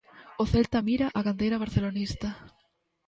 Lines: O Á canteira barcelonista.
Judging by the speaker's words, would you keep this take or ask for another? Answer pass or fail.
fail